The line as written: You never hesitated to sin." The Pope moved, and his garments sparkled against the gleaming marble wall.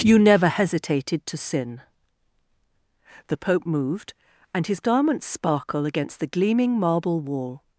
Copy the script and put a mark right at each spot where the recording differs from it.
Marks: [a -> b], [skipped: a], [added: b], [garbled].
You never hesitated to sin." The Pope moved, and his garments [sparkled -> sparkle] against the gleaming marble wall.